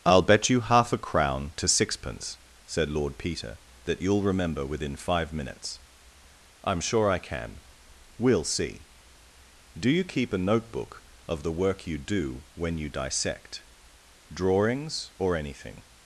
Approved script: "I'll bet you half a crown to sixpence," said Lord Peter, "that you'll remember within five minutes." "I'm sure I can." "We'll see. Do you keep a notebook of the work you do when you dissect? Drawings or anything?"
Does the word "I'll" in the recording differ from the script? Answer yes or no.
no